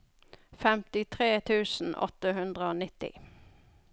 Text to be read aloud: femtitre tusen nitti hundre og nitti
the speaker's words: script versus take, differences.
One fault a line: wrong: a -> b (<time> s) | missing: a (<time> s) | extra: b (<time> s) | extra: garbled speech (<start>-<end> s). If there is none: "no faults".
wrong: nitti -> åtte (2.1 s)